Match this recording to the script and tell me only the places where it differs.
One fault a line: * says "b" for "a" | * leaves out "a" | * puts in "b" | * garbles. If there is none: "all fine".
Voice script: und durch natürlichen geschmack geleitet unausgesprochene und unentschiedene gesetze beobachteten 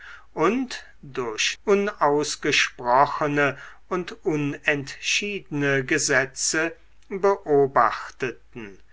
* leaves out "natürlichen geschmack geleitet"